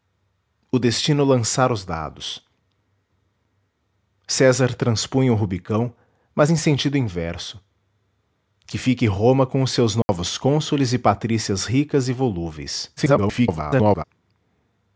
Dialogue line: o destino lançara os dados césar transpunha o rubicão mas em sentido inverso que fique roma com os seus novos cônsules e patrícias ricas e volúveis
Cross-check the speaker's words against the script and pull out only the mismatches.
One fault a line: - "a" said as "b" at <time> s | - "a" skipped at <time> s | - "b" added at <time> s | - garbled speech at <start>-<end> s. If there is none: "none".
- garbled speech at 13.0-14.0 s